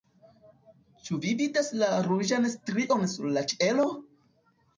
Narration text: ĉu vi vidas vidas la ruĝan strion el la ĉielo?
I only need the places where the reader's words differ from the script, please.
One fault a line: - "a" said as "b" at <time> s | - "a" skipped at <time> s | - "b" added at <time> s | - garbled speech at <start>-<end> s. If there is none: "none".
- "vidas" skipped at 1.7 s
- "el" said as "sur" at 3.1 s